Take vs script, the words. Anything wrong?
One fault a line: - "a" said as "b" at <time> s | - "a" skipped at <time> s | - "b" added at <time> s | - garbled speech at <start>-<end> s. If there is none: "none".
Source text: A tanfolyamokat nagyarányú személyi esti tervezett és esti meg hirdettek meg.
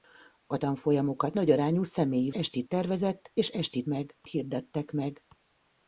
none